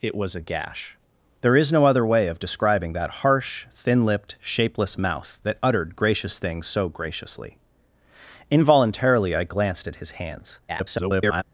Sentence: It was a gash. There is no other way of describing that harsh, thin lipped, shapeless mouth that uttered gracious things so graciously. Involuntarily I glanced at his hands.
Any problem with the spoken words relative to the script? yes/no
yes